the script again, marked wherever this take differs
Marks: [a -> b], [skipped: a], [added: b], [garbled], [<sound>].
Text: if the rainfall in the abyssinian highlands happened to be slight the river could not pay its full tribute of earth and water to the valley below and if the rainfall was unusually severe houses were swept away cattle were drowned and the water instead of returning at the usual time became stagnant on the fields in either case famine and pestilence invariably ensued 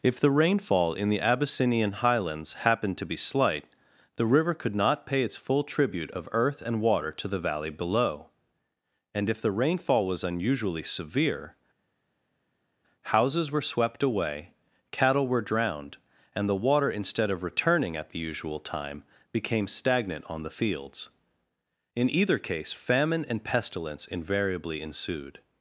if the rainfall in the abyssinian highlands happened to be slight the river could not pay its full tribute of earth and water to the valley below and if the rainfall was unusually severe houses were swept away cattle were drowned and the water instead of returning at the usual time became stagnant on the fields in either case famine and pestilence invariably ensued